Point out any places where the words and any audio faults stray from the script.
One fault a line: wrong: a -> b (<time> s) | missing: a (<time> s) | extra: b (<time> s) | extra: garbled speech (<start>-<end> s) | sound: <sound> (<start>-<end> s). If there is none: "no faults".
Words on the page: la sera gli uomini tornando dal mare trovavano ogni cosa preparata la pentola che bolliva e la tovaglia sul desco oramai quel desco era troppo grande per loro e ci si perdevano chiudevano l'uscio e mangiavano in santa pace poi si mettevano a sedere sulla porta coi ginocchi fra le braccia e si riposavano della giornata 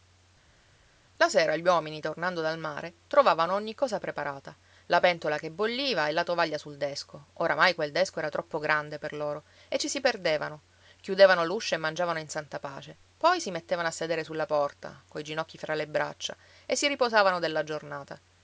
no faults